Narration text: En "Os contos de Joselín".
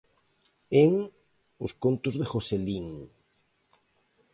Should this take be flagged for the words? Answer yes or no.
no